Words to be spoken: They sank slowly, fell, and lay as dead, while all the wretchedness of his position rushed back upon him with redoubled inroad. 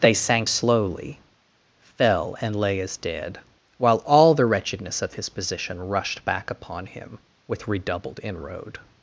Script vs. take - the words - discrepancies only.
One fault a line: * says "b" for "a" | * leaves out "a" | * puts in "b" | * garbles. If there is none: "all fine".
all fine